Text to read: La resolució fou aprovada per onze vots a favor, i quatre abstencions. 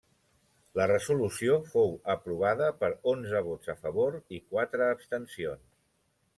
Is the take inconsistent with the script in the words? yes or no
no